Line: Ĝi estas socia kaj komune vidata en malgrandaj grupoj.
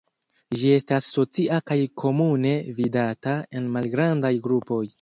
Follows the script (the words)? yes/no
yes